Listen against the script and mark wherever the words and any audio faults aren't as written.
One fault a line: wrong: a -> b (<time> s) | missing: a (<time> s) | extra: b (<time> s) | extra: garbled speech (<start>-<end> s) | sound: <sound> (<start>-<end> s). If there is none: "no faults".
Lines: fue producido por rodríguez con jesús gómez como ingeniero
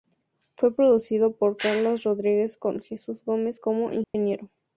extra: carlos (1.6 s)
sound: dropout (4.0-4.1 s)